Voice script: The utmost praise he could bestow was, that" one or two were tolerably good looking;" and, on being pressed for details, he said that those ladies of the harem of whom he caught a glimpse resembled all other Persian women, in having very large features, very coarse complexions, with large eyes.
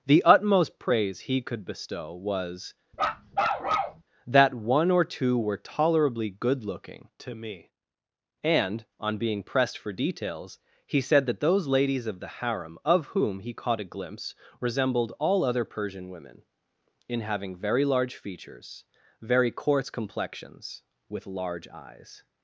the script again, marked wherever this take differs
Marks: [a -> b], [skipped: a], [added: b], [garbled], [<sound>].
The utmost praise he could bestow was, [bark] that" one or two were tolerably good looking;" [added: to me] and, on being pressed for details, he said that those ladies of the harem of whom he caught a glimpse resembled all other Persian women, in having very large features, very coarse complexions, with large eyes.